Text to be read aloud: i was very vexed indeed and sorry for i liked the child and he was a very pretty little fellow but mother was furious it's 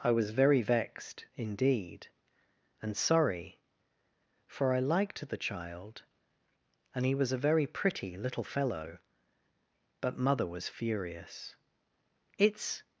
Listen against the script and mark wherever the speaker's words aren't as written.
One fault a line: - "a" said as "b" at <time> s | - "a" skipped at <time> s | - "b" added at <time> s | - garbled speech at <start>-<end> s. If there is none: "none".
none